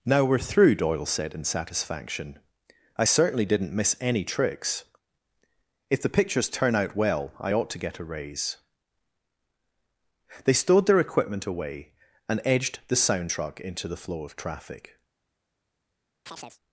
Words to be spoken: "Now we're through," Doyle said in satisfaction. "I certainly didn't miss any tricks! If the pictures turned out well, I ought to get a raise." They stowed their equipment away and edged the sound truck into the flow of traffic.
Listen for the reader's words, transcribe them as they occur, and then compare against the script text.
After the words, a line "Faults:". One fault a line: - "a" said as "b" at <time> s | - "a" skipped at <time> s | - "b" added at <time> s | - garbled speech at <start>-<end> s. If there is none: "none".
"Now we're through," Doyle said in satisfaction. "I certainly didn't miss any tricks! If the pictures turn out well, I ought to get a raise." They stowed their equipment away and edged the sound truck into the flow of traffic.
Faults:
- "turned" said as "turn" at 6.5 s